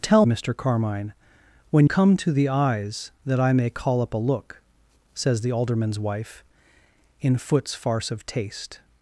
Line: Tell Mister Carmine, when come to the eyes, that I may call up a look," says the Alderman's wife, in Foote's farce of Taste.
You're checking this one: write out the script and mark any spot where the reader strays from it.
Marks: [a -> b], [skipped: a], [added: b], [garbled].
Tell Mister Carmine, when come to the eyes, that I may call up a look," says the Alderman's wife, in Foote's farce of Taste.